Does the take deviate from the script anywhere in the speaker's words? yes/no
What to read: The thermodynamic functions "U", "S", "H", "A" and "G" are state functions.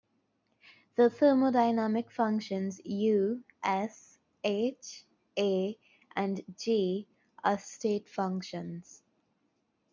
no